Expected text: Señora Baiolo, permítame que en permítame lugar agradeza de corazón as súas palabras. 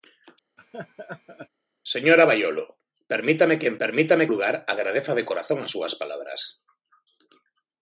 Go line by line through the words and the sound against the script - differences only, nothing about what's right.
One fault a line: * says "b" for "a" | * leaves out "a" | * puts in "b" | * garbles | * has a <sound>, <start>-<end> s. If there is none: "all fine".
* has a laugh, 0.6-1.5 s